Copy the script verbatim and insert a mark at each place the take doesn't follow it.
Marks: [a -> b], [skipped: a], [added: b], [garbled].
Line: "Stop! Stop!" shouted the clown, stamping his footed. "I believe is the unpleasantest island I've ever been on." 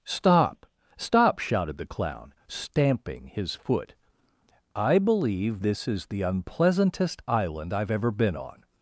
"Stop! Stop!" shouted the clown, stamping his [footed. -> foot] "I believe [added: this] is the unpleasantest island I've ever been on."